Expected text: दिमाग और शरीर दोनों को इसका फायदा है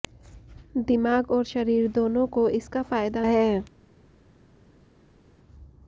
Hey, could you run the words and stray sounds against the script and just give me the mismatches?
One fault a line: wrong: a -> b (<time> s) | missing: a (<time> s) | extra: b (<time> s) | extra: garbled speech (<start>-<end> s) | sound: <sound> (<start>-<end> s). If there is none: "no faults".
no faults